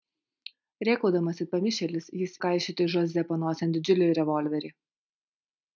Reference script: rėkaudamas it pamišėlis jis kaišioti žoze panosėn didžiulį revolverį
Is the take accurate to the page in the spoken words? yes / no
yes